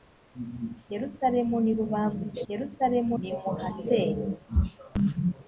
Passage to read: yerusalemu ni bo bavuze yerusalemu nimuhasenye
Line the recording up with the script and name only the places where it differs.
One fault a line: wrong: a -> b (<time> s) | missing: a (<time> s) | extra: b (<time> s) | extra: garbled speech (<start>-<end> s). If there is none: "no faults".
no faults